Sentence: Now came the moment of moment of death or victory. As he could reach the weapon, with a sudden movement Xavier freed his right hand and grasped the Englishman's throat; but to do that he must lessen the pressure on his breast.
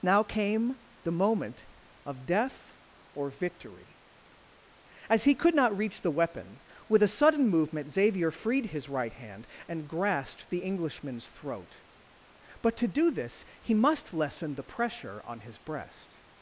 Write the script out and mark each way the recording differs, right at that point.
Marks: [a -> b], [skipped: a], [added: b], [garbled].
Now came the moment of [skipped: moment of] death or victory. As he could [added: not] reach the weapon, with a sudden movement Xavier freed his right hand and grasped the Englishman's throat; but to do [that -> this] he must lessen the pressure on his breast.